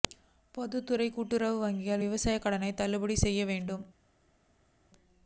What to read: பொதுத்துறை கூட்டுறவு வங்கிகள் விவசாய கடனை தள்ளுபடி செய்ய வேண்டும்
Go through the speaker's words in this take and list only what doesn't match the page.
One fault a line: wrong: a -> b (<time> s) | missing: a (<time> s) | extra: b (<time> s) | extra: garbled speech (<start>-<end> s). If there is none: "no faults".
no faults